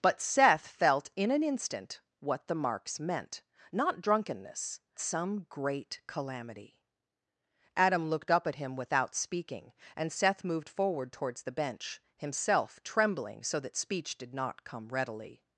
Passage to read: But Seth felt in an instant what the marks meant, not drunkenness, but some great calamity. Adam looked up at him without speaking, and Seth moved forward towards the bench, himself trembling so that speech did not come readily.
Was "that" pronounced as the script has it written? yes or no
yes